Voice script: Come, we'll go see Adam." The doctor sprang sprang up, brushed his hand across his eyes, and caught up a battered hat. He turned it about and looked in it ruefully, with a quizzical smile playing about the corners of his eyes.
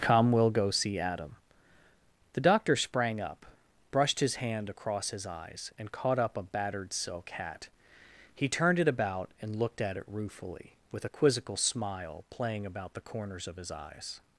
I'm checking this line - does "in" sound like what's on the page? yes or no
no